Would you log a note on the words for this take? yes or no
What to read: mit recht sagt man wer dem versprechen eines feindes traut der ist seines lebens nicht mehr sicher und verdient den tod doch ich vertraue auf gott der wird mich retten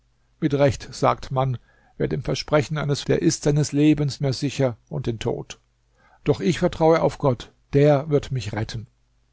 yes